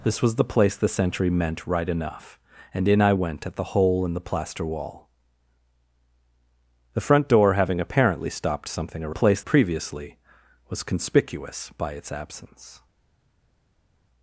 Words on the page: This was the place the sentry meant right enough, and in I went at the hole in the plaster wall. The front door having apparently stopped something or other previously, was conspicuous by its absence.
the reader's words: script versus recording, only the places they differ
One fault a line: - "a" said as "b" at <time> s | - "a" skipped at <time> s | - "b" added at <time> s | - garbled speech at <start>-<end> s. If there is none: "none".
- "other" said as "place" at 9.1 s